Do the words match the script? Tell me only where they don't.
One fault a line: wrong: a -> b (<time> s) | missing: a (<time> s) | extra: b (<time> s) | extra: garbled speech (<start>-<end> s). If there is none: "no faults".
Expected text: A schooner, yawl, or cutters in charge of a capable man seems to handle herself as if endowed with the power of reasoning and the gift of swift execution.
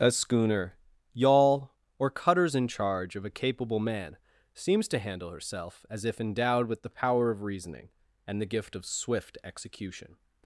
no faults